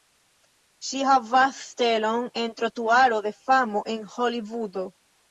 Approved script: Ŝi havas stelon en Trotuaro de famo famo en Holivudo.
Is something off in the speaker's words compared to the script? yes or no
yes